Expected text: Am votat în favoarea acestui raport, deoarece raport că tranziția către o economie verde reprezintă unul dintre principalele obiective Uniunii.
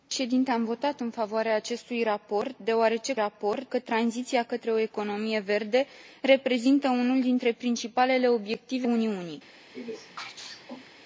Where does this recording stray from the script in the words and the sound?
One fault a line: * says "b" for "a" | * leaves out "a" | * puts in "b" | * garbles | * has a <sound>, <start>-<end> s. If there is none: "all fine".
* has a sneeze, 9.7-10.9 s